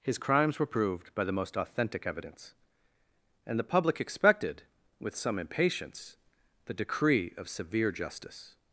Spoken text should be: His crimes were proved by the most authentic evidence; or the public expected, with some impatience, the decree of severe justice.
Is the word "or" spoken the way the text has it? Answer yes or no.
no